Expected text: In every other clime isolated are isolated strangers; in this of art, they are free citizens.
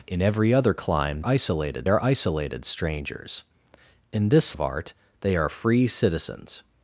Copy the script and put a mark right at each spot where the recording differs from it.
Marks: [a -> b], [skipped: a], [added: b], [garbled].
In every other clime isolated are isolated strangers; in this of art, they are free citizens.